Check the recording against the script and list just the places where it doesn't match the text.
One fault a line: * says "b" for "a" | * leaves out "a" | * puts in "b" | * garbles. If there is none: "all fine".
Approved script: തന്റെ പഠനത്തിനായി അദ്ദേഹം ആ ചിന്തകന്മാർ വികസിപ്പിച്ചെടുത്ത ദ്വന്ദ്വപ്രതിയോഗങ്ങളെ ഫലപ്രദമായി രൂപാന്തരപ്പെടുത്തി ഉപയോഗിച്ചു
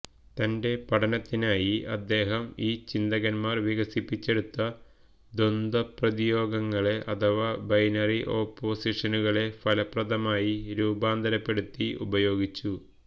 * says "ഈ" for "ആ"
* puts in "അഥവാ ബൈനറി ഓപ്പോസിഷനുകളെ"